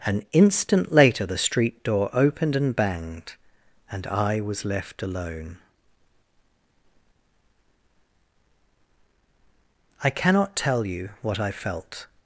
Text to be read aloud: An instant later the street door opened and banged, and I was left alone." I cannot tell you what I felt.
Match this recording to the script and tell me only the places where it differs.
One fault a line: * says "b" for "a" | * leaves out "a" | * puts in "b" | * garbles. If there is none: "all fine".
all fine